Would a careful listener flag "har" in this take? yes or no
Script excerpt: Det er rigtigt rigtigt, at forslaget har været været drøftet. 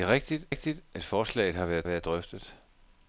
no